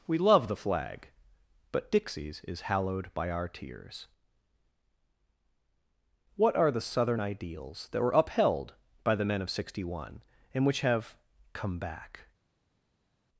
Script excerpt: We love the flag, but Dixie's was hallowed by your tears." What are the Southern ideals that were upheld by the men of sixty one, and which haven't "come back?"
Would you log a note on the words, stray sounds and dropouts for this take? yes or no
yes